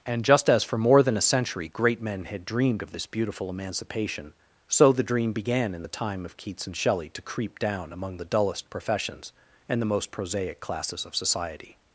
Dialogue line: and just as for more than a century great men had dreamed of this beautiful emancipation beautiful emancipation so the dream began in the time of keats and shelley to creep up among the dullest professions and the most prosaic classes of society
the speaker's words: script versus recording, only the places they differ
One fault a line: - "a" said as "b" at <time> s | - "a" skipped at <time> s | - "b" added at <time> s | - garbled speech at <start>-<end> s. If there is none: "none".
- "beautiful emancipation" skipped at 4.3 s
- "up" said as "down" at 7.6 s